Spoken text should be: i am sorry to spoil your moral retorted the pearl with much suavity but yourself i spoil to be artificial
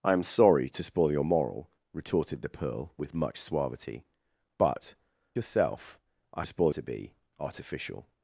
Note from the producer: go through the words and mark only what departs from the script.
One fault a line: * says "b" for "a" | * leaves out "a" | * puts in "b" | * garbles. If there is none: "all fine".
all fine